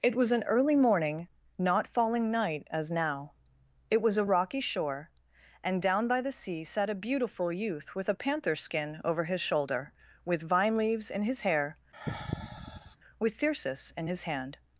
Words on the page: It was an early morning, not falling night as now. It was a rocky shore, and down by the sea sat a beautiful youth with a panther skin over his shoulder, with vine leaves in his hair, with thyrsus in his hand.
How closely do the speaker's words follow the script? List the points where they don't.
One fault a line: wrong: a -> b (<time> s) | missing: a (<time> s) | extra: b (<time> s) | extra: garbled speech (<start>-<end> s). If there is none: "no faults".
no faults